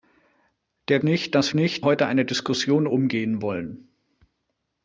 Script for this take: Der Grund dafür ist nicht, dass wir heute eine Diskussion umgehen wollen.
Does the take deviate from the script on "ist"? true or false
true